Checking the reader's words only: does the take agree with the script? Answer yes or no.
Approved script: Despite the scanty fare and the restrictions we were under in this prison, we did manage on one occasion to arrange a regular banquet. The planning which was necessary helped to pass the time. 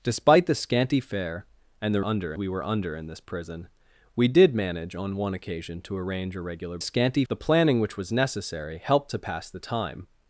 no